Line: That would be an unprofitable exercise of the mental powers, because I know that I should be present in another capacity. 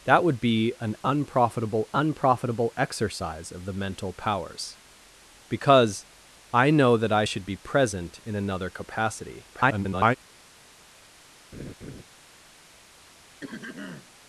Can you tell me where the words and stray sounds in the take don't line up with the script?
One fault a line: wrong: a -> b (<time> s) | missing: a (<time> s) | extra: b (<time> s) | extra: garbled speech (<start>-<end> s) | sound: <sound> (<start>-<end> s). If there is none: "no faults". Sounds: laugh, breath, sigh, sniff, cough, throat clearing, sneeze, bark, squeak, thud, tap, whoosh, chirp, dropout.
extra: unprofitable (1.9 s)
extra: garbled speech (9.5-10.2 s)
sound: laugh (11.5-12.0 s)
sound: throat clearing (13.4-14.1 s)